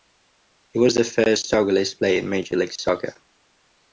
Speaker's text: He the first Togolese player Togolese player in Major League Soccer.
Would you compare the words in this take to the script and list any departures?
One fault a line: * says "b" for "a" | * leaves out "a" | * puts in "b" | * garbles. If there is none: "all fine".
* puts in "was"
* leaves out "Togolese player"